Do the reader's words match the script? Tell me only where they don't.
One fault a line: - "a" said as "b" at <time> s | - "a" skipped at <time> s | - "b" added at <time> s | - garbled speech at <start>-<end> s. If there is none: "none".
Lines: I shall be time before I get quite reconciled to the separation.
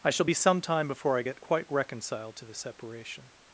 - "some" added at 0.3 s